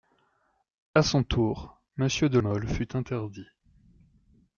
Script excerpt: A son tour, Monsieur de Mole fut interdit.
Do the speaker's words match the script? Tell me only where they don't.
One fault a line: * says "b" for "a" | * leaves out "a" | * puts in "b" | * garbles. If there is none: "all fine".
all fine